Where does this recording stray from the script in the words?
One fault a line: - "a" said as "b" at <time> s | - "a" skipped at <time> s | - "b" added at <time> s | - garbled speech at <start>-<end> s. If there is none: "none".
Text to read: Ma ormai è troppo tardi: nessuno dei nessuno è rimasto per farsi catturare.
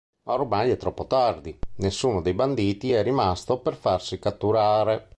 - "nessuno" said as "banditi" at 2.3 s